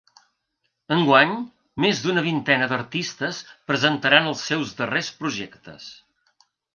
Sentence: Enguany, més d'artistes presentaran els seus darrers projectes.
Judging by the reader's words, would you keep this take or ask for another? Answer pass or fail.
fail